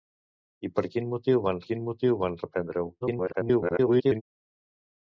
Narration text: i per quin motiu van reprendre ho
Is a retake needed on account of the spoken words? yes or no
yes